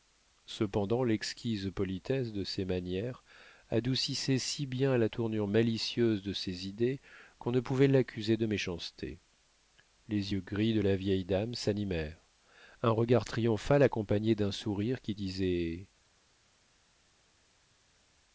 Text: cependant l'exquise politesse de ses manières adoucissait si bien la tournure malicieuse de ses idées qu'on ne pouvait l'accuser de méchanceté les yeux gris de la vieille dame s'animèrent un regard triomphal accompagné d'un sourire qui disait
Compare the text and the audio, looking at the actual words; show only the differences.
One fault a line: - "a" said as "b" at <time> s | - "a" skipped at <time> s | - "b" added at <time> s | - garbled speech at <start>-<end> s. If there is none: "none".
none